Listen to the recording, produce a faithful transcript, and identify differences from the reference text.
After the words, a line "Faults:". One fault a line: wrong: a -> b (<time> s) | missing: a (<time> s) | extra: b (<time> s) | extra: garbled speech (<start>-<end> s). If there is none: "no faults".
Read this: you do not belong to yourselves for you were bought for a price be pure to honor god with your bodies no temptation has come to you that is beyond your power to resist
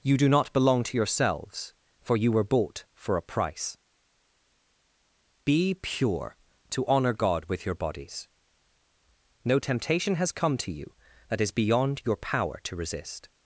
you do not belong to yourselves for you were bought for a price be pure to honor god with your bodies no temptation has come to you that is beyond your power to resist
Faults:
no faults